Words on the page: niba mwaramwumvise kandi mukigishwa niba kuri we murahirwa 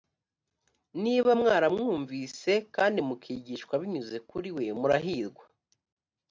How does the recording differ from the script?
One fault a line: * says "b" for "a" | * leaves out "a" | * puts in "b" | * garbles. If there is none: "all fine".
* says "binyuze" for "niba"